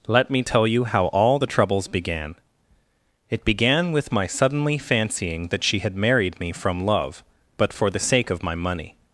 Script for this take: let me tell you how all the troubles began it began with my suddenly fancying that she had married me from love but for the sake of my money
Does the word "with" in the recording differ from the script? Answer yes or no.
no